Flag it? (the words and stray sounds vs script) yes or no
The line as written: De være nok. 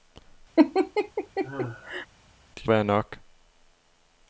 yes